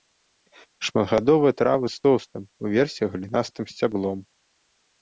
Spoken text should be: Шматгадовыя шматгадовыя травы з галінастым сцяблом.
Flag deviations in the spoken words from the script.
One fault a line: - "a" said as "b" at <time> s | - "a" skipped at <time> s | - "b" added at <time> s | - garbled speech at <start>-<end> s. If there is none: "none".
- "шматгадовыя" skipped at 1.5 s
- "тоўстым уверсе" added at 2.1 s